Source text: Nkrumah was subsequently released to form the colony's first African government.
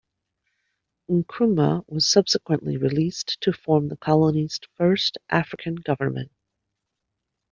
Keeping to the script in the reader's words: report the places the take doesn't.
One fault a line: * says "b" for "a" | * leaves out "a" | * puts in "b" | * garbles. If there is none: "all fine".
all fine